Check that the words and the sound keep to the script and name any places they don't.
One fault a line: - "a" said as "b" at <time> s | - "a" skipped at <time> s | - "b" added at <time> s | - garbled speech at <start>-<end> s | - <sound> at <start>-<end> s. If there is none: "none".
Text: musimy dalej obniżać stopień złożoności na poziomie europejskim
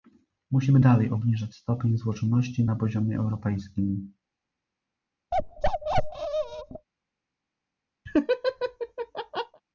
- bark at 5.3-6.9 s
- laugh at 8.1-9.6 s